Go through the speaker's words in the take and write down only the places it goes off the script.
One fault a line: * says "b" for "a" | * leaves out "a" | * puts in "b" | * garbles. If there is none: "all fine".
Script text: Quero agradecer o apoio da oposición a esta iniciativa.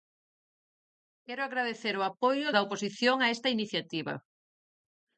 all fine